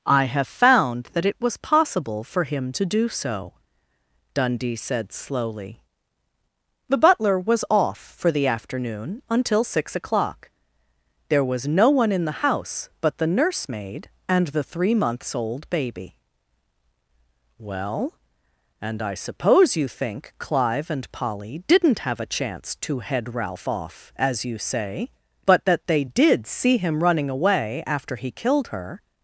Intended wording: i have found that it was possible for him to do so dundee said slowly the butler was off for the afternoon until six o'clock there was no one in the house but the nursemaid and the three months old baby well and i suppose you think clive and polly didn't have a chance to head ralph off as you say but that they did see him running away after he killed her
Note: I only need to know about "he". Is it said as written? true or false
true